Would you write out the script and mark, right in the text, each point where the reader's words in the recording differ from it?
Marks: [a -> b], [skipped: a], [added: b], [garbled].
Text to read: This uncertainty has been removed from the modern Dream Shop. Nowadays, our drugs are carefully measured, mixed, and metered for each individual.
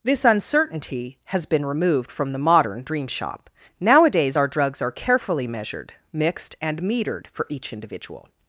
This uncertainty has been removed from the modern Dream Shop. Nowadays, our drugs are carefully measured, mixed, and metered for each individual.